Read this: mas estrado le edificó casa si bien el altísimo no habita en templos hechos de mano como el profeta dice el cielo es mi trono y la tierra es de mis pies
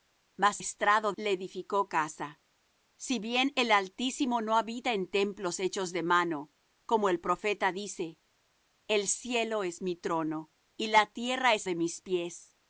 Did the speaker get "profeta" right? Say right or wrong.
right